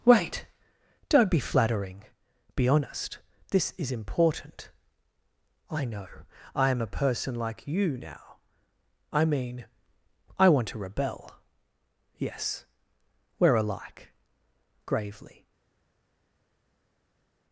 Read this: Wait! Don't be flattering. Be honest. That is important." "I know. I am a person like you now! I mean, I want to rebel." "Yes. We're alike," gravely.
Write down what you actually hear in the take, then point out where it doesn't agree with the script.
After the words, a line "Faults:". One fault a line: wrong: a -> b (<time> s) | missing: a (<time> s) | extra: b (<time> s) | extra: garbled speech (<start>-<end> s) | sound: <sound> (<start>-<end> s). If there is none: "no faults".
Wait! Don't be flattering. Be honest. This is important." "I know. I am a person like you now! I mean, I want to rebel." "Yes. We're alike," gravely.
Faults:
wrong: That -> This (3.5 s)